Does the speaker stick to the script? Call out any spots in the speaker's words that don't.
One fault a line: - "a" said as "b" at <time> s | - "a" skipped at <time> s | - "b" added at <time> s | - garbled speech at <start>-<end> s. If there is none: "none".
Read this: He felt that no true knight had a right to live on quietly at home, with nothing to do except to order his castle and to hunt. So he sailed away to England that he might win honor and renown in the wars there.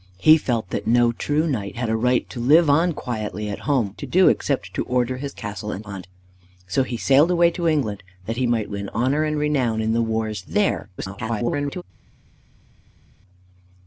- "with nothing" skipped at 4.0 s
- "to" skipped at 5.9 s
- garbled speech at 11.0-11.8 s